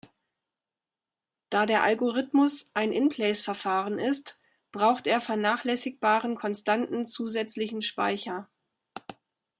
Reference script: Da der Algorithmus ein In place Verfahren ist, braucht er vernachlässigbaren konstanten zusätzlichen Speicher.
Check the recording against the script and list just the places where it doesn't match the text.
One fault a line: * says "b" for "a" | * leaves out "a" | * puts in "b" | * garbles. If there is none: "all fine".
all fine